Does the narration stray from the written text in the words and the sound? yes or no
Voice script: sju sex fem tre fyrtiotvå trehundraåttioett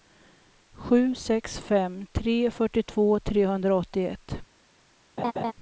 yes